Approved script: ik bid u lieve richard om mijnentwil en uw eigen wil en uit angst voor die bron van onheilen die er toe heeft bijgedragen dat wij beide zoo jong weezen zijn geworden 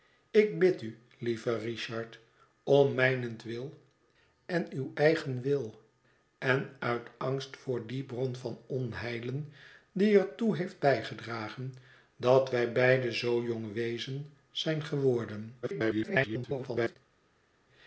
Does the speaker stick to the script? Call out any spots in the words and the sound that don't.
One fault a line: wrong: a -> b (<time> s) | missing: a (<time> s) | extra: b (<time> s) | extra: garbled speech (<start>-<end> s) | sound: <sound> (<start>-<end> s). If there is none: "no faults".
extra: garbled speech (15.6-17.0 s)